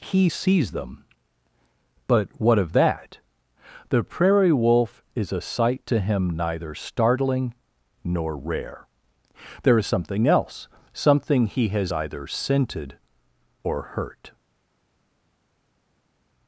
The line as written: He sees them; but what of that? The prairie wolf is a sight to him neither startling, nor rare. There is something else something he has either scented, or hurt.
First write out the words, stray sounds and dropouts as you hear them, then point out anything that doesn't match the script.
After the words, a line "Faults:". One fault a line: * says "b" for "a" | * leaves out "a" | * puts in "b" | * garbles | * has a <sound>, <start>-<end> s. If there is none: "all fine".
He sees them; but what of that? The prairie wolf is a sight to him neither startling, nor rare. There is something else something he has either scented, or hurt.
Faults:
all fine